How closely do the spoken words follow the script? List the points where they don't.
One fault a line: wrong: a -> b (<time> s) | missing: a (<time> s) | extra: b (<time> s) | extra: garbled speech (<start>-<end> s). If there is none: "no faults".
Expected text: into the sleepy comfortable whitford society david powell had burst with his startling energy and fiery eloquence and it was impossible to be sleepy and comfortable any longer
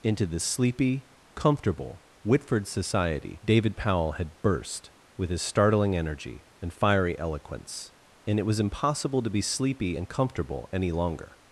no faults